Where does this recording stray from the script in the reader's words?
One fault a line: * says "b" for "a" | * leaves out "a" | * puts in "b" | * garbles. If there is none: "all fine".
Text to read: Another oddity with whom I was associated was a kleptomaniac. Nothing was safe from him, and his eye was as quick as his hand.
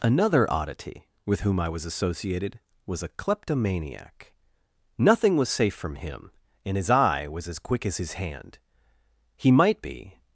* puts in "He might be"